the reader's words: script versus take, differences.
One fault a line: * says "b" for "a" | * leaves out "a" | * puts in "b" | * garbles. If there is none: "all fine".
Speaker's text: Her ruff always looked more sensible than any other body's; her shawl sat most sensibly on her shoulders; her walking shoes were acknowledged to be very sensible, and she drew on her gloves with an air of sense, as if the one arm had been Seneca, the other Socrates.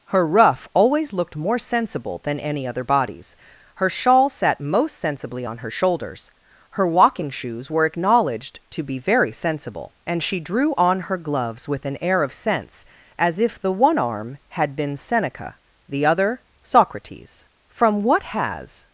* puts in "From what has"